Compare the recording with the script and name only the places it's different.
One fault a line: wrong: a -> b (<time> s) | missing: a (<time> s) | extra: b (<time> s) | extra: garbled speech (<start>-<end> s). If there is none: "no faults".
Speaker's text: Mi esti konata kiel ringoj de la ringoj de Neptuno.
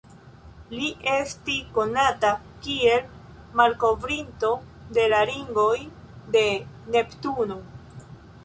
wrong: Mi -> Li (0.8 s)
wrong: ringoj -> malkovrinto (3.6 s)